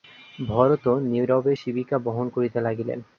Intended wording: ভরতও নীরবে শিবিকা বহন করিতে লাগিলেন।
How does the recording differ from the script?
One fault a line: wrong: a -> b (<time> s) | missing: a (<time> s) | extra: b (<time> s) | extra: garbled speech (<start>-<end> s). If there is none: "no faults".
no faults